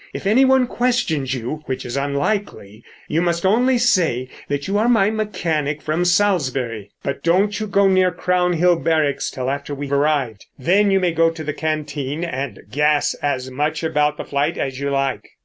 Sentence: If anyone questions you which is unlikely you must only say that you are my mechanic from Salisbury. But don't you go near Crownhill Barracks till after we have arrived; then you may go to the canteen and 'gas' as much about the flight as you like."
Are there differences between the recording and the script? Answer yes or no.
yes